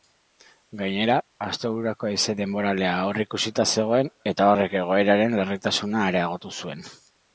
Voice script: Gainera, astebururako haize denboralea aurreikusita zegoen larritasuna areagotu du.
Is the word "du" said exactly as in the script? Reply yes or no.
no